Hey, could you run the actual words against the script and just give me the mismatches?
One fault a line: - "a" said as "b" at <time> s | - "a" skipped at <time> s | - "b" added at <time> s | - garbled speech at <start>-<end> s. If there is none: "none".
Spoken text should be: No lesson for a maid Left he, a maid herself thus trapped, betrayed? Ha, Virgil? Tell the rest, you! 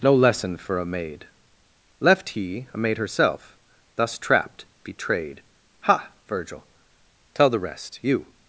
none